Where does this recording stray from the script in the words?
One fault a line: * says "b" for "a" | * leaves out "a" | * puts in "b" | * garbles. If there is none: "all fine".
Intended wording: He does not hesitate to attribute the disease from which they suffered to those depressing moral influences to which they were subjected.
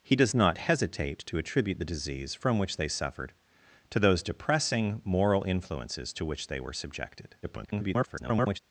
* garbles